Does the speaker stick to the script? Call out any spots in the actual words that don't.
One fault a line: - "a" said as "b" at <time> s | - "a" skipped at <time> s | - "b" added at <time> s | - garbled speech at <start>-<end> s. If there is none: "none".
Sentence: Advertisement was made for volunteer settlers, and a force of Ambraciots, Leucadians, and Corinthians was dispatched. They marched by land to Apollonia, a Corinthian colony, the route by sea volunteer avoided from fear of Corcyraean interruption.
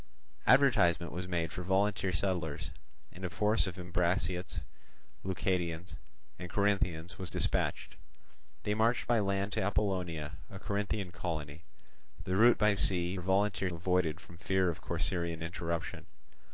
none